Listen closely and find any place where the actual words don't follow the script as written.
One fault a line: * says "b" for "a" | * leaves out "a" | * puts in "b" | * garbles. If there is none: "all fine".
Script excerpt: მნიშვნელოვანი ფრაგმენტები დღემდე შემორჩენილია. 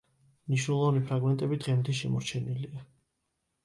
all fine